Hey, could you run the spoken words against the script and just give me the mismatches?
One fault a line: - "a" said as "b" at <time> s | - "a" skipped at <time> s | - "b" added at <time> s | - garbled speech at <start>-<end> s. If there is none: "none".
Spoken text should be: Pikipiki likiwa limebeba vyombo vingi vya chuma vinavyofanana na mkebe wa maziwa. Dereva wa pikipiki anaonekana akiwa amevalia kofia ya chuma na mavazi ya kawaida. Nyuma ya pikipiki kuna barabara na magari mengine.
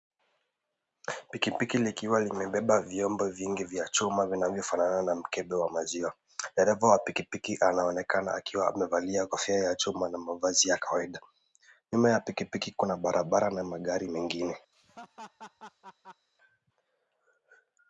none